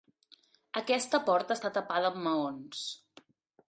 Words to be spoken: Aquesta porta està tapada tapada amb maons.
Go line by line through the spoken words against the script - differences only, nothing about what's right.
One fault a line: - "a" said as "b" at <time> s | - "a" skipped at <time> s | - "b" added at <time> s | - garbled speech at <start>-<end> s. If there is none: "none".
- "tapada" skipped at 2.1 s